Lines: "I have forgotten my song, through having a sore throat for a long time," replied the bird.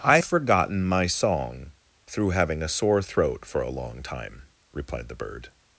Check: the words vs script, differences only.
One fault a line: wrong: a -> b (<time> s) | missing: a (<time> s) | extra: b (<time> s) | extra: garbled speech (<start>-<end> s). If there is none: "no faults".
missing: have (0.2 s)